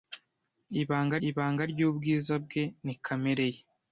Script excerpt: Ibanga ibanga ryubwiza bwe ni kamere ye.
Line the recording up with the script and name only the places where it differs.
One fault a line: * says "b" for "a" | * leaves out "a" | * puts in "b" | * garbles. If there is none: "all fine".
all fine